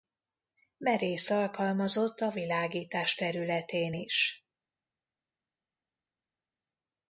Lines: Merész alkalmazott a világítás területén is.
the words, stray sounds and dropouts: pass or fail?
pass